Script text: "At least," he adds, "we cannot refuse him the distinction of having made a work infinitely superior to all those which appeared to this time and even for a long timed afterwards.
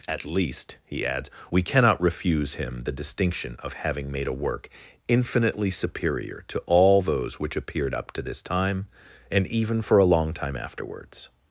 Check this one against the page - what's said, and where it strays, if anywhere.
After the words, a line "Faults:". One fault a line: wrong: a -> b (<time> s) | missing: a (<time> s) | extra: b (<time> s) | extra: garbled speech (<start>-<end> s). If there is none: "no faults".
"At least," he adds, "we cannot refuse him the distinction of having made a work infinitely superior to all those which appeared up to this time and even for a long time afterwards.
Faults:
extra: up (7.9 s)
wrong: timed -> time (10.3 s)